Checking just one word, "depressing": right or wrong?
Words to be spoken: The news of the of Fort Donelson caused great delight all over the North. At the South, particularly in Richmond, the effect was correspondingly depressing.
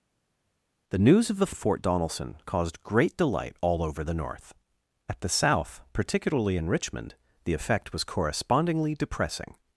right